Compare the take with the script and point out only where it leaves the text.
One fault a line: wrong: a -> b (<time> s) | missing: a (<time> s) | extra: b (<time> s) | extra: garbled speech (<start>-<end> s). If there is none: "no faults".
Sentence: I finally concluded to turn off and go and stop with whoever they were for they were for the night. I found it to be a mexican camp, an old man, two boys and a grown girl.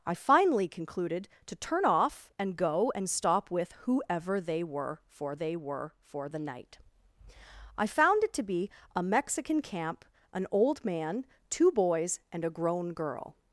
no faults